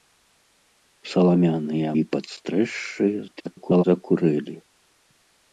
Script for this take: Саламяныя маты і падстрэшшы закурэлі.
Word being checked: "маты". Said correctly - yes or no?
no